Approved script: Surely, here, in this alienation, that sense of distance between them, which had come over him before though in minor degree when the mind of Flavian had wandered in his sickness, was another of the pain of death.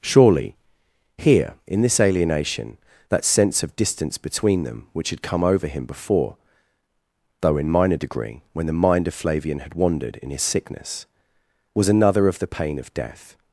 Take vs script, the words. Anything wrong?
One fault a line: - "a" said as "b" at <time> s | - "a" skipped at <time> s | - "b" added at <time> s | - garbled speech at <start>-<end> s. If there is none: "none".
none